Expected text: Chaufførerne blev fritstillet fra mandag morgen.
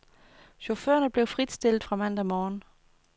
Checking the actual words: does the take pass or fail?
pass